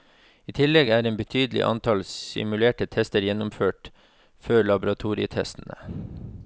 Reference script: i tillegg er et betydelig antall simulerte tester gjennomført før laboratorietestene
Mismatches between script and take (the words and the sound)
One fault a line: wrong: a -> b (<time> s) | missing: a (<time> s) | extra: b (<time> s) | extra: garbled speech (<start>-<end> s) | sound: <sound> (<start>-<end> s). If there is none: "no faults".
no faults